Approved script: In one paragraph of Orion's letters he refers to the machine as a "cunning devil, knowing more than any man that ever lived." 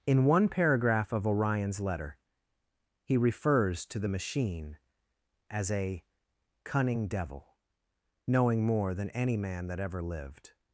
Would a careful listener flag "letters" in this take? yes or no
yes